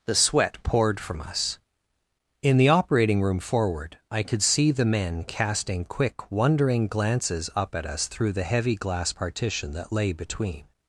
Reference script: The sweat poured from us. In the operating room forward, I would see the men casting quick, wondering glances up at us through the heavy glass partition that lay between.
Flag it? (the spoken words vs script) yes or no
yes